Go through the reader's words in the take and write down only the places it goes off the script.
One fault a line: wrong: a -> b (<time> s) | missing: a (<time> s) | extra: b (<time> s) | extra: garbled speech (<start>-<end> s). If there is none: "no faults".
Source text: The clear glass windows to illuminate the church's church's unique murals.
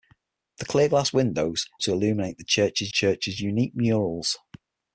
no faults